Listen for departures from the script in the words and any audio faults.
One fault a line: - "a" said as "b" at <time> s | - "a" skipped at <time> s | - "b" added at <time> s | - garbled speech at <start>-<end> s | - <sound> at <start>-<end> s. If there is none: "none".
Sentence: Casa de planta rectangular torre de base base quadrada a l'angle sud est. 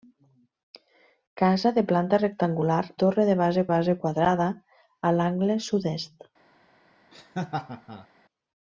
- laugh at 7.1-8.1 s